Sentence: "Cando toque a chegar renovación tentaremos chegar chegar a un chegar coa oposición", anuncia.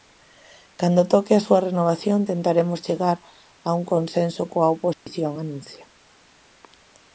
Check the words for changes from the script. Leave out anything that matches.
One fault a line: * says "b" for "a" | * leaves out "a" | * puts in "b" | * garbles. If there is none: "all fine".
* says "súa" for "chegar"
* leaves out "chegar"
* says "consenso" for "chegar"